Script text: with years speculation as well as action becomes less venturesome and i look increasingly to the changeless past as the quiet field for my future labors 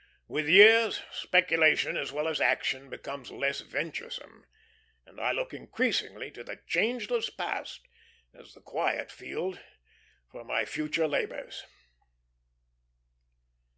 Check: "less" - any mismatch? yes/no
no